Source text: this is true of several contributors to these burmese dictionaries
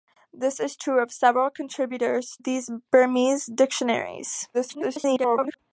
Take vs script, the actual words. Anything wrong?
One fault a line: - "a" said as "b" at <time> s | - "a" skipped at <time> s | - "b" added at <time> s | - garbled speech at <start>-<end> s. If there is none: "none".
- "to" skipped at 2.4 s
- garbled speech at 4.5-5.6 s